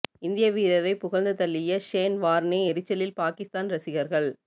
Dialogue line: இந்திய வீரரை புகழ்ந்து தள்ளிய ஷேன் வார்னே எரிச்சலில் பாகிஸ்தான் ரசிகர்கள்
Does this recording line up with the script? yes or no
yes